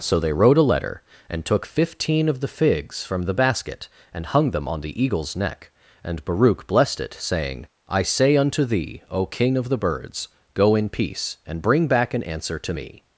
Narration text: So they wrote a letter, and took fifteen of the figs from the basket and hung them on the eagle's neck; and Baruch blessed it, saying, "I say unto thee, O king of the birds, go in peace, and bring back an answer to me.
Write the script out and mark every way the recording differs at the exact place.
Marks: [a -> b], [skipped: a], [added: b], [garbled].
So they wrote a letter, and took fifteen of the figs from the basket and hung them on the eagle's neck; and Baruch blessed it, saying, "I say unto thee, O king of the birds, go in peace, and bring back an answer to me.